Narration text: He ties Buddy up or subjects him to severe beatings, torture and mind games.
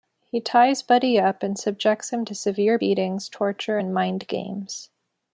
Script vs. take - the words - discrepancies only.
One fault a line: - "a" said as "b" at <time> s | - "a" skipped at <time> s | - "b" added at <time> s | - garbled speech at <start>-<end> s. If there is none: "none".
- "or" said as "and" at 1.4 s